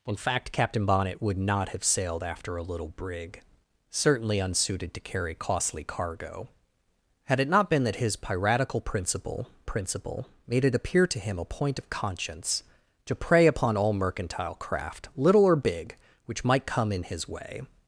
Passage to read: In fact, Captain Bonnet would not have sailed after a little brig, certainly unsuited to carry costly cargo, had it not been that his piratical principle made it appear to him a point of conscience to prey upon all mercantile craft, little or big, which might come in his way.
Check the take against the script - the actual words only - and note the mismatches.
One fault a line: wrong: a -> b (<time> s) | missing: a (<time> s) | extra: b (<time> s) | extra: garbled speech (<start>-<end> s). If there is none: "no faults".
extra: principle (9.6 s)